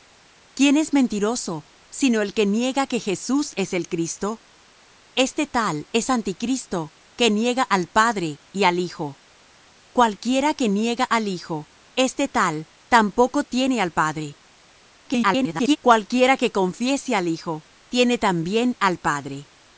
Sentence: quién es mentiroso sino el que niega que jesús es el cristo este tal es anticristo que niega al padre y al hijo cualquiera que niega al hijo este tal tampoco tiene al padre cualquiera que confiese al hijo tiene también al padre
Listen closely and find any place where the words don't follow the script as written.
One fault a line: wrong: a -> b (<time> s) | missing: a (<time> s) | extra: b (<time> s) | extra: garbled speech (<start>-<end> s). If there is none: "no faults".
extra: garbled speech (15.0-15.8 s)